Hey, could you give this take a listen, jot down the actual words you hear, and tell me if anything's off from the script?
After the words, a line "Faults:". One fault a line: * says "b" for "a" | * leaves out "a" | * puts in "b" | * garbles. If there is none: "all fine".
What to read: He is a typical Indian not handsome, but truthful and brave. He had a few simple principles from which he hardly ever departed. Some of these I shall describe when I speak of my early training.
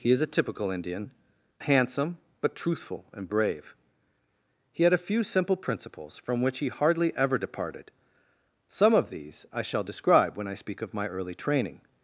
He is a typical Indian handsome, but truthful and brave. He had a few simple principles from which he hardly ever departed. Some of these I shall describe when I speak of my early training.
Faults:
* leaves out "not"